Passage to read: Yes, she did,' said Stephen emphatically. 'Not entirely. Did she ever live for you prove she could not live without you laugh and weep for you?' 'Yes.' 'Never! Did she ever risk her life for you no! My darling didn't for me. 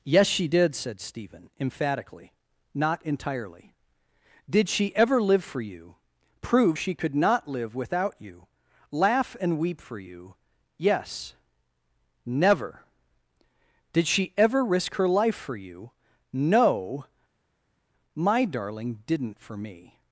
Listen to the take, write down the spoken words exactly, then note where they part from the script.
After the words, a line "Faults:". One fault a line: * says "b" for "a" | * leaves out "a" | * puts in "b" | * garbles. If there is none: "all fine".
Yes, she did,' said Stephen emphatically. 'Not entirely. Did she ever live for you prove she could not live without you laugh and weep for you?' 'Yes.' 'Never! Did she ever risk her life for you no! My darling didn't for me.
Faults:
all fine